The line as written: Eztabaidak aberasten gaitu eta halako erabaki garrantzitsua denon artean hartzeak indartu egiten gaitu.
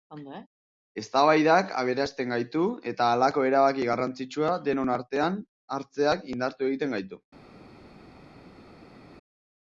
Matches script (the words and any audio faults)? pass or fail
pass